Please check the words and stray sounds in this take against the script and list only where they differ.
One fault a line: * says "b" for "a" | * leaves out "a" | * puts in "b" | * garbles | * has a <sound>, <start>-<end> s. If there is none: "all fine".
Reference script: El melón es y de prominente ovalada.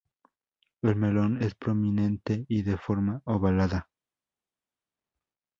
* puts in "prominente"
* says "forma" for "prominente"